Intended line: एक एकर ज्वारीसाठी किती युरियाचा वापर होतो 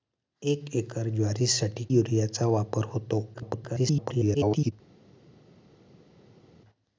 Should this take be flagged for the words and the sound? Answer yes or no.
yes